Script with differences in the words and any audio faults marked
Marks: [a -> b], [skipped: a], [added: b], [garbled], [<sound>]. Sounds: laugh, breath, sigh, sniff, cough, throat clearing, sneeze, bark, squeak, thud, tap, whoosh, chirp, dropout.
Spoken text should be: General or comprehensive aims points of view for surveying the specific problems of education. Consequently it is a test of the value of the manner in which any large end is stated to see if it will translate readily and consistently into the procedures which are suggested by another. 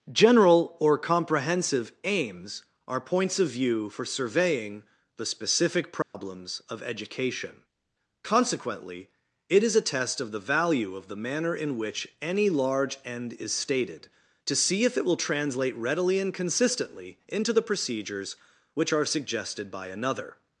General or comprehensive aims [added: are] points of view for surveying the specific problems [dropout] of education. Consequently it is a test of the value of the manner in which any large end is stated to see if it will translate readily and consistently into the procedures which are suggested by another.